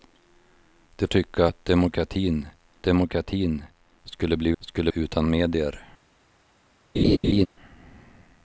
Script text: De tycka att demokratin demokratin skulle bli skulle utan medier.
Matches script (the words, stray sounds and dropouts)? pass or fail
fail